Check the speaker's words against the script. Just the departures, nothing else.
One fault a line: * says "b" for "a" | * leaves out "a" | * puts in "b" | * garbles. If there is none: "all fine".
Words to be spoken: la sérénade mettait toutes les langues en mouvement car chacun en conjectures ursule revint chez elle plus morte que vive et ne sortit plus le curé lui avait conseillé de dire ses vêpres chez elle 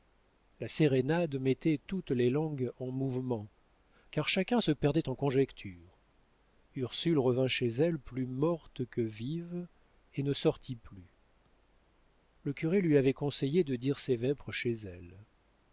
* puts in "se perdait"